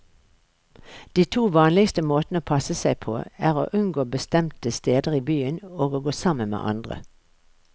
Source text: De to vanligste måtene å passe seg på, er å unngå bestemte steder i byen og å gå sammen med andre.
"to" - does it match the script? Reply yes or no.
yes